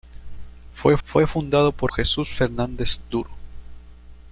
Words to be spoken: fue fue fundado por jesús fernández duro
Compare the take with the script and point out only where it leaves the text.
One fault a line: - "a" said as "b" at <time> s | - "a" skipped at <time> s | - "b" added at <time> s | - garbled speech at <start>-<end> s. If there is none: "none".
none